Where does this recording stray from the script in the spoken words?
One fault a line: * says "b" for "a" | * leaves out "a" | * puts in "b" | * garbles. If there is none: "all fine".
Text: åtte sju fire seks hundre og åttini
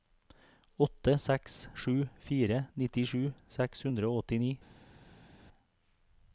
* puts in "seks"
* puts in "nittisju"